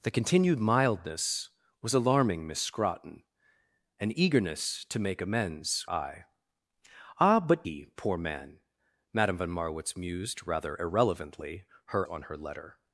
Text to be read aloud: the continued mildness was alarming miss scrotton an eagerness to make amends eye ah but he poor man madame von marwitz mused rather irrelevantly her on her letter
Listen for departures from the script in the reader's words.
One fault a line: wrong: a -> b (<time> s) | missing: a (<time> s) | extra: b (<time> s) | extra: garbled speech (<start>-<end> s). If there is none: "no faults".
no faults